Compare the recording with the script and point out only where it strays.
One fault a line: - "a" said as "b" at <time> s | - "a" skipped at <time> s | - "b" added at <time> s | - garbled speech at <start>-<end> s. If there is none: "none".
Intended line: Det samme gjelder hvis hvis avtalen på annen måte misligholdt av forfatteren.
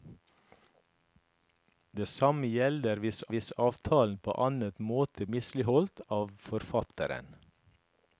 none